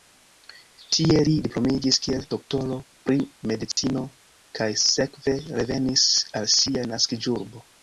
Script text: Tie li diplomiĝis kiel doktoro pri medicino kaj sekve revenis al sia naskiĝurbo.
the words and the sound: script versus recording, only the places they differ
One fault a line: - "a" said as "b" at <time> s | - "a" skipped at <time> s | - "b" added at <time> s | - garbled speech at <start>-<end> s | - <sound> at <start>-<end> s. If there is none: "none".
- dropout at 3.7-3.8 s